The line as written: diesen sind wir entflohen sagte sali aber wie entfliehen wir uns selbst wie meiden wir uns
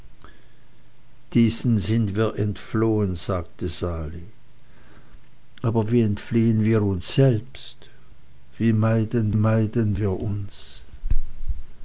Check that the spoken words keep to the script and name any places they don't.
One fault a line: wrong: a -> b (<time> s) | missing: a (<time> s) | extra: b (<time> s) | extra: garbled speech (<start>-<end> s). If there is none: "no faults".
extra: meiden (9.3 s)